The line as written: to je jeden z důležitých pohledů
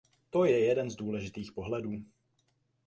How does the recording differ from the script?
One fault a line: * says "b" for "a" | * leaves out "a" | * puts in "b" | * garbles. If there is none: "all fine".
all fine